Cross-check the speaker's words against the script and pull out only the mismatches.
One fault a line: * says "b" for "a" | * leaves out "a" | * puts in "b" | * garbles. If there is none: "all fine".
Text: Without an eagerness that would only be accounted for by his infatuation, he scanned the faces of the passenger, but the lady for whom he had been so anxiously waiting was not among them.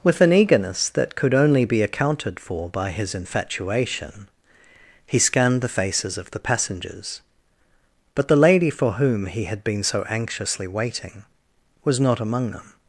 * says "With" for "Without"
* says "could" for "would"
* says "passengers" for "passenger"